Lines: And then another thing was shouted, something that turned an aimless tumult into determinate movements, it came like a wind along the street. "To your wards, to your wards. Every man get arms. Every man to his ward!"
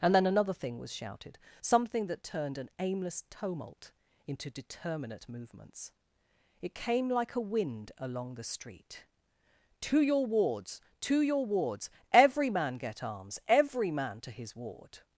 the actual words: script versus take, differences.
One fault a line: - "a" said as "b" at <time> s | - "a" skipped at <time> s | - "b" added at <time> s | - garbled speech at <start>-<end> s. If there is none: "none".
none